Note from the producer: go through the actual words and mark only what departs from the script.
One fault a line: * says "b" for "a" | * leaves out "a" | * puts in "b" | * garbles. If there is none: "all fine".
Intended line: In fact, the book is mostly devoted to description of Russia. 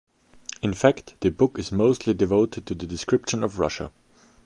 * puts in "the"